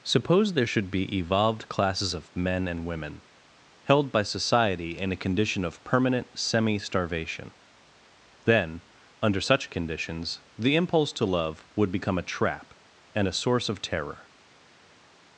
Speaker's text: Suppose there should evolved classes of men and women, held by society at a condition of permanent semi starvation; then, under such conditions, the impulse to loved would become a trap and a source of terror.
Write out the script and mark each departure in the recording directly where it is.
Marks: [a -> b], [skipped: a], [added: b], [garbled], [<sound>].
Suppose there should [added: be] evolved classes of men and women, held by society [at -> in] a condition of permanent semi starvation; then, under such conditions, the impulse to [loved -> love] would become a trap and a source of terror.